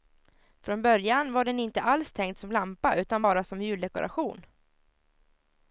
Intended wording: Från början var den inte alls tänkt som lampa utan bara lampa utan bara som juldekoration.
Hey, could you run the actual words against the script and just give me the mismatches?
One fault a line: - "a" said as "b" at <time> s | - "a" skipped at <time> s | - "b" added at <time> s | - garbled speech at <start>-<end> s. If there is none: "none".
- "lampa utan bara" skipped at 3.4 s